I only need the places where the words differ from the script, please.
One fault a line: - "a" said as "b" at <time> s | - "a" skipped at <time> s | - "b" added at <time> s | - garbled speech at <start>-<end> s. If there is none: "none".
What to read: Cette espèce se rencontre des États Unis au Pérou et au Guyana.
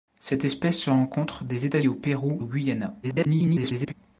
- "Unis" skipped at 1.8 s
- "et" skipped at 2.4 s
- garbled speech at 3.0-3.9 s